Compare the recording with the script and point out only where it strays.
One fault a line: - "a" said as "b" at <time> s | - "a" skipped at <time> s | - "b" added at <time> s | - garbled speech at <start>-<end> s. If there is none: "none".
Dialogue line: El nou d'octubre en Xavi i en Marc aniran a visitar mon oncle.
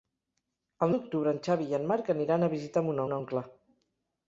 - "nou" skipped at 0.9 s
- "mon" added at 3.0 s